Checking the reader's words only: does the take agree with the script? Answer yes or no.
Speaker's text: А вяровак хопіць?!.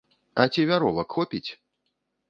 no